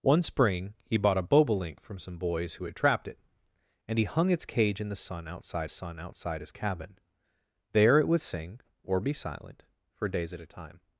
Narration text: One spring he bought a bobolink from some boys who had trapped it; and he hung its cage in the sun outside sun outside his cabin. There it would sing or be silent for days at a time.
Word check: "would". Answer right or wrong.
right